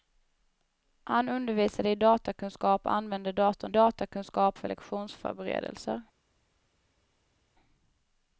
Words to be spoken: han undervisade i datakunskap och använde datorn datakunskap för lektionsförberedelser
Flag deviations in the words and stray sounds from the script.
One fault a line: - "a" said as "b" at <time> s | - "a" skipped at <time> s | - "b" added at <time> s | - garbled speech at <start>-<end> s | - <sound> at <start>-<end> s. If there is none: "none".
none